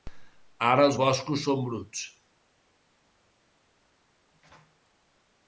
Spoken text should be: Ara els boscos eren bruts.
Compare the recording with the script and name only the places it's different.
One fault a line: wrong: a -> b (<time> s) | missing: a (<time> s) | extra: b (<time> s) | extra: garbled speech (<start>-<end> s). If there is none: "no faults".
wrong: eren -> són (1.5 s)